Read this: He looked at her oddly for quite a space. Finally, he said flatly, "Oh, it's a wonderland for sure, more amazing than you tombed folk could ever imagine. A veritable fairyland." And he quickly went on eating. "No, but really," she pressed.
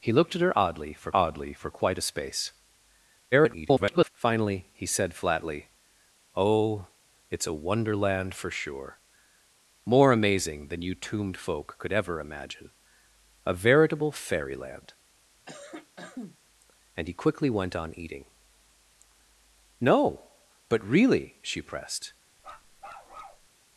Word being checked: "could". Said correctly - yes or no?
yes